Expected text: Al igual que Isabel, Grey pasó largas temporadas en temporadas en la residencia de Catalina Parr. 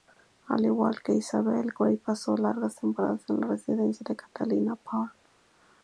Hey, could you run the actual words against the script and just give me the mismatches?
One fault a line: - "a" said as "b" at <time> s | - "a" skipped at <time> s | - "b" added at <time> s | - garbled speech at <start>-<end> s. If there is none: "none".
- "temporadas en" skipped at 3.4 s